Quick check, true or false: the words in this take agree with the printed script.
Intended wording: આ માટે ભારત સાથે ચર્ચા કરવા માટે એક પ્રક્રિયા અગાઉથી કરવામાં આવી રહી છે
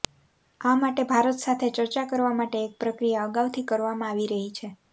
true